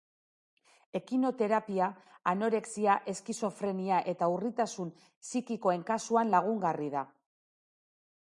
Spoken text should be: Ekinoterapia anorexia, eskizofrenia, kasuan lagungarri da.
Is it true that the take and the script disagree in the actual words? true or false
true